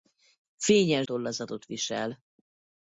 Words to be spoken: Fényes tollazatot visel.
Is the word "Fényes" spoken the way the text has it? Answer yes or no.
yes